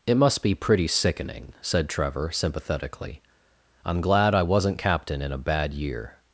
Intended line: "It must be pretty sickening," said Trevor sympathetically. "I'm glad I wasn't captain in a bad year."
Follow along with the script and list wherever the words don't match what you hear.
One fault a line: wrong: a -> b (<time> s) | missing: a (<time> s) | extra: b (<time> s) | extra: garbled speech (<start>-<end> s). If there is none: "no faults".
no faults